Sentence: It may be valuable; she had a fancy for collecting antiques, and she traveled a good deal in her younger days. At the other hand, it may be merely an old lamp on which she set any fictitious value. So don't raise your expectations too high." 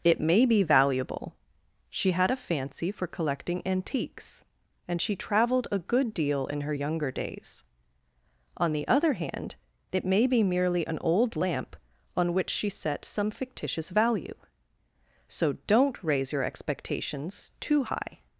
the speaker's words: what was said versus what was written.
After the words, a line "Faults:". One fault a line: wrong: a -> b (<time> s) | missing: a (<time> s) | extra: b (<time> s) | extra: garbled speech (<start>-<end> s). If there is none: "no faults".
It may be valuable; she had a fancy for collecting antiques, and she traveled a good deal in her younger days. On the other hand, it may be merely an old lamp on which she set some fictitious value. So don't raise your expectations too high."
Faults:
wrong: At -> On (8.6 s)
wrong: any -> some (13.0 s)